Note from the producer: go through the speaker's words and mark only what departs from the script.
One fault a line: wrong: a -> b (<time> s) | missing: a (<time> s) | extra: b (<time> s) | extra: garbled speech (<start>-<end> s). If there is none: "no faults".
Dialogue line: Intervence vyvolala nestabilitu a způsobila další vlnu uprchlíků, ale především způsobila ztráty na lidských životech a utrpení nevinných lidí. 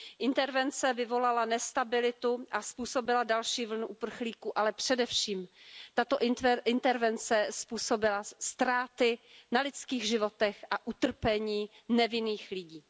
extra: tato intervence (5.9 s)